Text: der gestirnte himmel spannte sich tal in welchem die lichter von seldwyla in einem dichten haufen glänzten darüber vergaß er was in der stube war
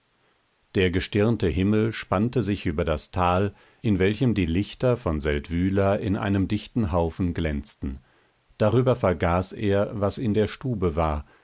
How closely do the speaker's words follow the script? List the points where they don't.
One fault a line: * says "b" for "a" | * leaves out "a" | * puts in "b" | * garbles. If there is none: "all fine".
* puts in "über das"